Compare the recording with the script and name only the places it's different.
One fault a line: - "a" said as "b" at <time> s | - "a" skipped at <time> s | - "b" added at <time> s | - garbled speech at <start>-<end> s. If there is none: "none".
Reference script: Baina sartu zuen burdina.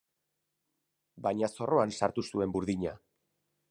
- "zorroan" added at 1.6 s